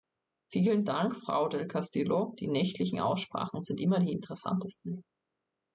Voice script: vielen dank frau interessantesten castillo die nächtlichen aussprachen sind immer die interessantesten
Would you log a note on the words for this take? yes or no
yes